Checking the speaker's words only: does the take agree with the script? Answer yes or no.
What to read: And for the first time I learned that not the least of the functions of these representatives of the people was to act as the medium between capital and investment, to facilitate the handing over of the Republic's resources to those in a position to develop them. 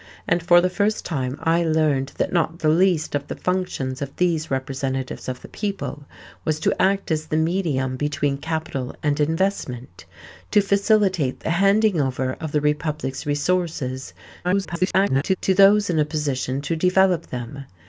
no